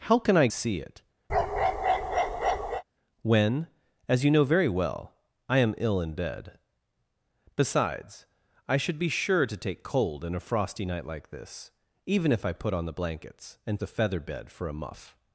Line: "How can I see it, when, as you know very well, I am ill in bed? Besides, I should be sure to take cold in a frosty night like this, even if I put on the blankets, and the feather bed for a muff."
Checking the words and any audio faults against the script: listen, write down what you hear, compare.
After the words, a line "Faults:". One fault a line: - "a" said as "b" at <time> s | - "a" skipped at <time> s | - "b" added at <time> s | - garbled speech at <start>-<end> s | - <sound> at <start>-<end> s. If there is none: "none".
"How can I see it, when, as you know very well, I am ill in bed? Besides, I should be sure to take cold in a frosty night like this, even if I put on the blankets, and the feather bed for a muff."
Faults:
- bark at 1.3-2.8 s